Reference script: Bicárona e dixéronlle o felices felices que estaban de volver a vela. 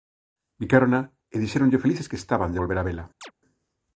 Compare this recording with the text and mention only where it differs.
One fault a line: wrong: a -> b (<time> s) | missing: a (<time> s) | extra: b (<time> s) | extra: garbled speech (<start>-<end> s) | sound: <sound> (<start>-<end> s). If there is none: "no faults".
missing: felices (2.1 s)
sound: chirp (3.2-3.3 s)